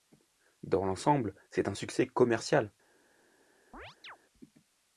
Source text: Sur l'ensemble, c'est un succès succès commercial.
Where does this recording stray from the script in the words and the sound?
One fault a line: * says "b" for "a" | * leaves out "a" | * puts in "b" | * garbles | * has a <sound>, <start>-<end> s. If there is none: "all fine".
* says "Dans" for "Sur"
* leaves out "succès"
* has a chirp, 3.7-4.2 s